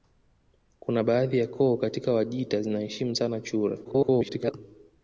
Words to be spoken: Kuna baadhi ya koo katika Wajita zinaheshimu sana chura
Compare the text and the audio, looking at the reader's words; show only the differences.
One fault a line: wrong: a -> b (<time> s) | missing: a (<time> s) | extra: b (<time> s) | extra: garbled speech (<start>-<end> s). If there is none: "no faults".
extra: garbled speech (3.8-4.5 s)